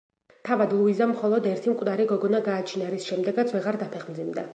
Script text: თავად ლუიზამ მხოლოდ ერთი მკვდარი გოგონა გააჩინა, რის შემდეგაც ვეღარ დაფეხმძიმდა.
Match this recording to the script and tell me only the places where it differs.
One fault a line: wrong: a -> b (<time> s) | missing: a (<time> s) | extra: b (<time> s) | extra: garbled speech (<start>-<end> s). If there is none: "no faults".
no faults